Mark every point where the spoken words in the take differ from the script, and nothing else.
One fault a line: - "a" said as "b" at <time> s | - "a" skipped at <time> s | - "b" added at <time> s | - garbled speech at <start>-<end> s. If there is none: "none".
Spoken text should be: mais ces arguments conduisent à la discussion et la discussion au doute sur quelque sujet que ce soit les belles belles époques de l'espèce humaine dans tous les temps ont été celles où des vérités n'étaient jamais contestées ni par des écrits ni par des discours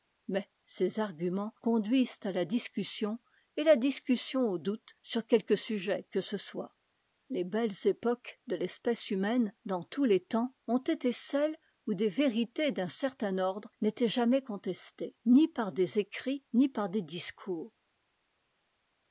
- "belles" skipped at 7.8 s
- "d'un certain ordre" added at 12.7 s